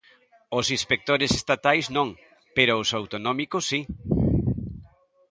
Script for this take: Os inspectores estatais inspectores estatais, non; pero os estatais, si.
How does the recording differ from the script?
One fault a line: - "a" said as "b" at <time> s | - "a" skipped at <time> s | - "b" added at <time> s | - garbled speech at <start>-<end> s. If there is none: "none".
- "inspectores estatais" skipped at 1.9 s
- "estatais" said as "autonómicos" at 3.0 s